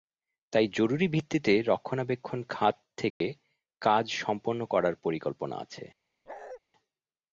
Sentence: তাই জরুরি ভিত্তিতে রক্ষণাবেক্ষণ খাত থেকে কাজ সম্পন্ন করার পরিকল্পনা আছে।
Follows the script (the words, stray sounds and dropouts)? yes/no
no